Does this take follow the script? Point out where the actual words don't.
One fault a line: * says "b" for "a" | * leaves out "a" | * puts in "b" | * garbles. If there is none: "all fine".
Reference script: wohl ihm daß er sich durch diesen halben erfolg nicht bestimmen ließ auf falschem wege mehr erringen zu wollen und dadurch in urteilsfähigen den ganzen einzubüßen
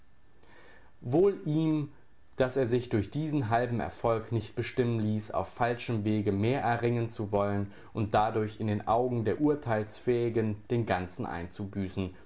* puts in "den augen der"